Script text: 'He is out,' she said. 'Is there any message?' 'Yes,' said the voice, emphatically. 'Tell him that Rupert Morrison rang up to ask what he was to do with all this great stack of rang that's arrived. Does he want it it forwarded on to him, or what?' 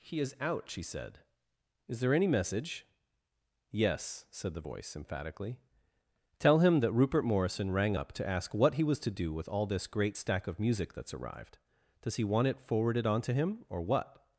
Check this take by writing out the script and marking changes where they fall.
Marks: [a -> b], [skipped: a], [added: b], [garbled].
'He is out,' she said. 'Is there any message?' 'Yes,' said the voice, emphatically. 'Tell him that Rupert Morrison rang up to ask what he was to do with all this great stack of [rang -> music] that's arrived. Does he want it [skipped: it] forwarded on to him, or what?'